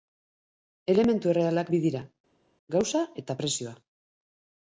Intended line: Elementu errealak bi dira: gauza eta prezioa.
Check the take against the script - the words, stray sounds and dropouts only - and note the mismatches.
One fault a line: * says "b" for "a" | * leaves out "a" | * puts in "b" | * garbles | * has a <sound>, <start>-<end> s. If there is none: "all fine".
all fine